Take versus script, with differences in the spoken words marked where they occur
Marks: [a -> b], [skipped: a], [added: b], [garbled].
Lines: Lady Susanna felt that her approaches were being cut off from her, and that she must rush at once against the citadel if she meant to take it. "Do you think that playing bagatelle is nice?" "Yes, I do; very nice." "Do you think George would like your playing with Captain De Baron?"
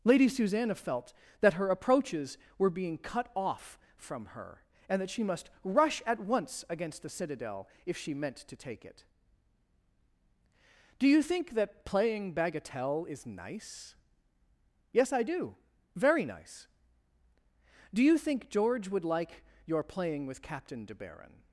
Lady Susanna felt that her approaches were being cut off from her, and that she must rush at once against the citadel if she meant to take it. "Do you think that playing bagatelle is nice?" "Yes, I do; very nice." "Do you think George would like your playing with Captain De Baron?"